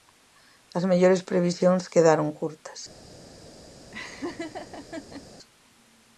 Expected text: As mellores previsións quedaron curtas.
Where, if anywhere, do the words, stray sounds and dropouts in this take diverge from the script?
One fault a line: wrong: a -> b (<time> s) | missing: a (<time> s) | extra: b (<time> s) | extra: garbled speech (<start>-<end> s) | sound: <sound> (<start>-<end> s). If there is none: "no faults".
sound: laugh (3.9-5.3 s)